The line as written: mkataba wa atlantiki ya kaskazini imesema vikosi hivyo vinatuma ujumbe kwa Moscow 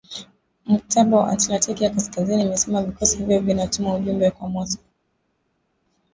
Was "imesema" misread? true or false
false